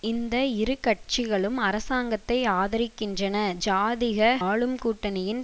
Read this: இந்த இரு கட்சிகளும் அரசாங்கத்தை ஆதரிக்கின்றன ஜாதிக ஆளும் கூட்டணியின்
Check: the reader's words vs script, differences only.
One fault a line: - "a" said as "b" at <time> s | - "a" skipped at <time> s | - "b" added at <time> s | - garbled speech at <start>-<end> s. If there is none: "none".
none